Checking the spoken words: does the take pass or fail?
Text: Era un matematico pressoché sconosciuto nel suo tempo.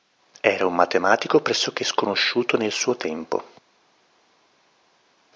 pass